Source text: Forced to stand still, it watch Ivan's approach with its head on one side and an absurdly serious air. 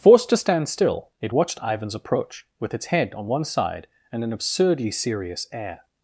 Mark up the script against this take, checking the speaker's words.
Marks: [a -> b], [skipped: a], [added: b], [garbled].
Forced to stand still, it [watch -> watched] Ivan's approach with its head on one side and an absurdly serious air.